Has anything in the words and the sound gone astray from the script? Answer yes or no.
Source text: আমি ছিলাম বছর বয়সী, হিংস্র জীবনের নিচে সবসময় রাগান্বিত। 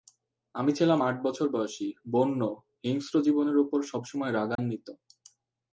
yes